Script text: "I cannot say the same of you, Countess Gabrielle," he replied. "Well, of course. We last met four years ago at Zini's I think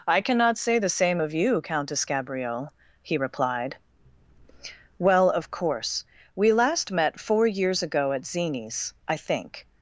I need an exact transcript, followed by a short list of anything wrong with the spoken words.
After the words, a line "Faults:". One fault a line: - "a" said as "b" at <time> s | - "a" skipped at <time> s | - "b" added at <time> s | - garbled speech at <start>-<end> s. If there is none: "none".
"I cannot say the same of you, Countess Gabrielle," he replied. "Well, of course. We last met four years ago at Zini's I think
Faults:
none